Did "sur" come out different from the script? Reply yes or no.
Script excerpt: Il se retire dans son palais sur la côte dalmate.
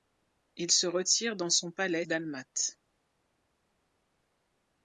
yes